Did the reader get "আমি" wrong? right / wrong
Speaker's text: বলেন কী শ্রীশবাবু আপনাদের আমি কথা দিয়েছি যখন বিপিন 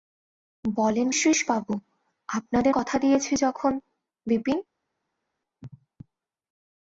wrong